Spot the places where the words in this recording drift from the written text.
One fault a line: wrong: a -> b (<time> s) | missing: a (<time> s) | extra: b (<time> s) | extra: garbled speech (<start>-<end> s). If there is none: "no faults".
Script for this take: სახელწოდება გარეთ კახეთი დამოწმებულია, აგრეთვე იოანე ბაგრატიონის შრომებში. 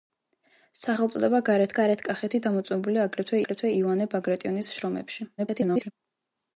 extra: გარეთ (1.8 s)
extra: აგრეთვე (3.4 s)
extra: garbled speech (5.4-5.9 s)